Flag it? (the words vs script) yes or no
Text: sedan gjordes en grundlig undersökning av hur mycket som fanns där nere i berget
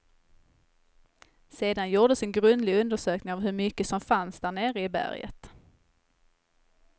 no